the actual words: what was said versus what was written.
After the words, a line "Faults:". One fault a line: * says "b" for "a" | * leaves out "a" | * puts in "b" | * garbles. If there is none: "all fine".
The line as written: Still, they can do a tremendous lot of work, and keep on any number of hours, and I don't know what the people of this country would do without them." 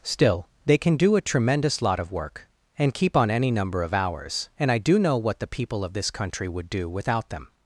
Still, they can do a tremendous lot of work, and keep on any number of hours, and I do know what the people of this country would do without them."
Faults:
* says "do" for "don't"